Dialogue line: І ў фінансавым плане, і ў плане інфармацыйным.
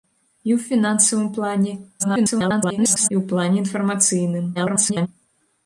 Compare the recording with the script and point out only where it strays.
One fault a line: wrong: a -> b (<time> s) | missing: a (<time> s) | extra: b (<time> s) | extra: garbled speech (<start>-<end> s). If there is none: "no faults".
extra: garbled speech (2.0-3.1 s)
extra: garbled speech (4.5-5.1 s)